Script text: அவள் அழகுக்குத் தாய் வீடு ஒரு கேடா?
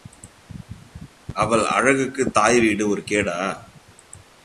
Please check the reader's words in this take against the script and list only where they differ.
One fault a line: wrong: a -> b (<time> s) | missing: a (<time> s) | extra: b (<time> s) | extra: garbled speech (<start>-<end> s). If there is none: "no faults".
no faults